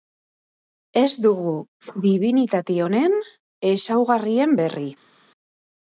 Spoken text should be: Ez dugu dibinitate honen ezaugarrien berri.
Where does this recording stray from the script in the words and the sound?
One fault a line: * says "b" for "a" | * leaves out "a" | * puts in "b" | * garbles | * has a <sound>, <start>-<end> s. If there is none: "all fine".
all fine